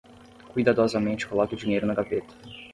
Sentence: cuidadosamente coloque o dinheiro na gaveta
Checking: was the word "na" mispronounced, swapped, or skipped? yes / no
no